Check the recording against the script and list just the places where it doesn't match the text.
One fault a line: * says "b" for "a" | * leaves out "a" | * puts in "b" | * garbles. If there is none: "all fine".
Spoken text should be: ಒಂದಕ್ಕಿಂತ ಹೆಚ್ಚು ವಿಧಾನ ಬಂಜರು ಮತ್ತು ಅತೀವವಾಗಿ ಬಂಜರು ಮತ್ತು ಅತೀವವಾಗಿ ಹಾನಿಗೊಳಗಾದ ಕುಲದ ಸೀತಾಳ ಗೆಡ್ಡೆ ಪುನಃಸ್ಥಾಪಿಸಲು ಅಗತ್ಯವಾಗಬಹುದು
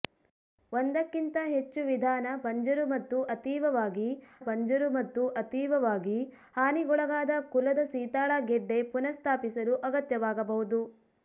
all fine